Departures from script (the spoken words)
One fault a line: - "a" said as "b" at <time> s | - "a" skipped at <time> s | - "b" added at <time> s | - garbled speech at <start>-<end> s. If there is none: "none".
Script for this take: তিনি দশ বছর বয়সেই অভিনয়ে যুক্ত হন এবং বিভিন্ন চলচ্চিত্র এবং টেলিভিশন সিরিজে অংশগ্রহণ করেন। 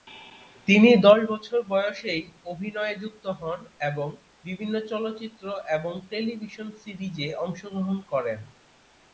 none